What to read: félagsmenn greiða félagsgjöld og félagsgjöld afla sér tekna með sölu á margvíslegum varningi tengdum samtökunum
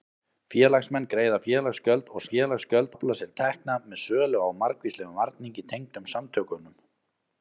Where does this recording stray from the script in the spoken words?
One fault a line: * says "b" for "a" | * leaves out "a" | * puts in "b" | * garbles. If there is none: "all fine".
all fine